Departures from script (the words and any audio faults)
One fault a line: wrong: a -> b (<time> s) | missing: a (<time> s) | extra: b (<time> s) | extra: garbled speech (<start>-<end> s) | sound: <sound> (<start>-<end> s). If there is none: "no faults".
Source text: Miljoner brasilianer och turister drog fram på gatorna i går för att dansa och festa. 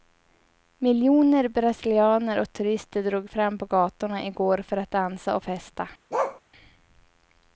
sound: bark (6.1-6.4 s)